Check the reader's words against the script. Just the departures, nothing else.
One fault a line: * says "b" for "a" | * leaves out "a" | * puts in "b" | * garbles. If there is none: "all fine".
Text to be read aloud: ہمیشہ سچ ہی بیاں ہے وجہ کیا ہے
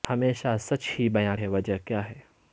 all fine